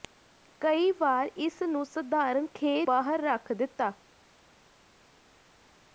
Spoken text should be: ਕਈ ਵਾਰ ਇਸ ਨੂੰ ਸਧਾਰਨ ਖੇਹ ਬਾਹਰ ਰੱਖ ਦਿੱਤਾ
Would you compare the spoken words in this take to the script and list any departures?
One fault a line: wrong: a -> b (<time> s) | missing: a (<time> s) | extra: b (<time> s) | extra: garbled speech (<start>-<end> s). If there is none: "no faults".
no faults